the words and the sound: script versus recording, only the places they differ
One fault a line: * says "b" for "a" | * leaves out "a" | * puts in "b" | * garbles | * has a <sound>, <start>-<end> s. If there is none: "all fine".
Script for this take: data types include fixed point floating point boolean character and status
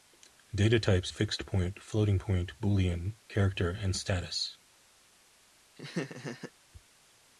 * leaves out "include"
* has a laugh, 5.8-6.5 s